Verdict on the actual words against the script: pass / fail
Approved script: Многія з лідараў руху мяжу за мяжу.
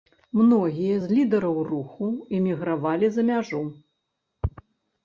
fail